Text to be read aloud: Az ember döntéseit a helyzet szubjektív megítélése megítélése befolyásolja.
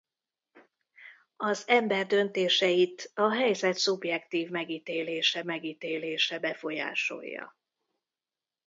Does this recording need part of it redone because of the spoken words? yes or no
no